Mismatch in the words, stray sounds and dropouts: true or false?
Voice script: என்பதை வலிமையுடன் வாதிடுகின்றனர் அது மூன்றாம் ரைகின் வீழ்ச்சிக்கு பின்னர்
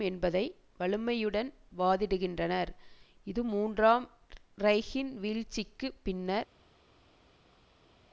true